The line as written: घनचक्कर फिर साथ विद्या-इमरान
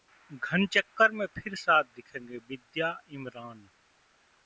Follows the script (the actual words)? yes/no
no